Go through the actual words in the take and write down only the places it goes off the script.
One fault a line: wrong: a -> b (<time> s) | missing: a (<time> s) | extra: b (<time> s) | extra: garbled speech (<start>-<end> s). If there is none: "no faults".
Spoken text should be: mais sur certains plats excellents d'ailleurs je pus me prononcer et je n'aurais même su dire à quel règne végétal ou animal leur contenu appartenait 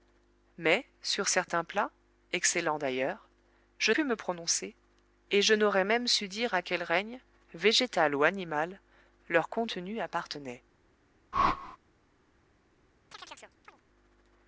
no faults